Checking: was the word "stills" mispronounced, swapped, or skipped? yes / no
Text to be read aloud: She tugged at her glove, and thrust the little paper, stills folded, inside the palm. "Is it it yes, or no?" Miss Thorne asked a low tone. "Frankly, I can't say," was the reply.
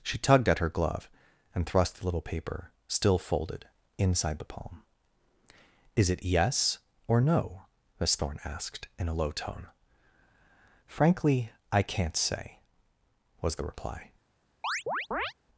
yes